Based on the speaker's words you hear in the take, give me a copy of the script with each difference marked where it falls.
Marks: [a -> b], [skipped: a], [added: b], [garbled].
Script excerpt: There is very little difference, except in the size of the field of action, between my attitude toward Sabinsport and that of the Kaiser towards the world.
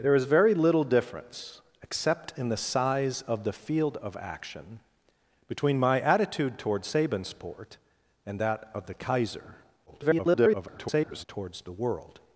There is very little difference, except in the size of the field of action, between my attitude toward Sabinsport and that of the Kaiser [garbled] towards the world.